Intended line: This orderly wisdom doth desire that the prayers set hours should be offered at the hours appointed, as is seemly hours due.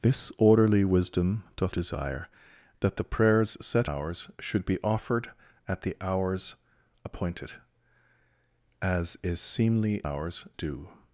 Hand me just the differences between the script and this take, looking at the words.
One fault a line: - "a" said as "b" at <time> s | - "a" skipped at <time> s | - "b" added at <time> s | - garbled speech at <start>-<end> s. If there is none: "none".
none